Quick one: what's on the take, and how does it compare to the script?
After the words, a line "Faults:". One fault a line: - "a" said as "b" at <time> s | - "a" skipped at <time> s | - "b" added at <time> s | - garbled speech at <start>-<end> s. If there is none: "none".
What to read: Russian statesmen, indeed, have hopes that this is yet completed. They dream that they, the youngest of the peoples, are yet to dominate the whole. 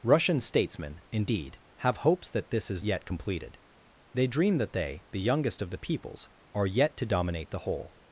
Russian statesmen, indeed, have hopes that this is yet completed. They dream that they, the youngest of the peoples, are yet to dominate the whole.
Faults:
none